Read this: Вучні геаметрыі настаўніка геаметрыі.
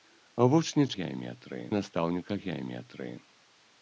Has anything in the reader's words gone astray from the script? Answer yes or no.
no